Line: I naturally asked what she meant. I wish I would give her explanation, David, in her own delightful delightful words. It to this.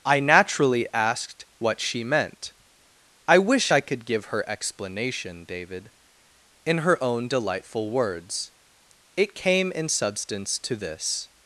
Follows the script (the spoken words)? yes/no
no